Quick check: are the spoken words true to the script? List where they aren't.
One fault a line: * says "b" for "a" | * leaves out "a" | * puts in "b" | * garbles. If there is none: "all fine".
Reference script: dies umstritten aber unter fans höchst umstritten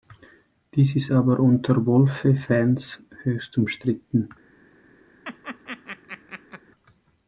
* says "ist" for "umstritten"
* puts in "wolfe"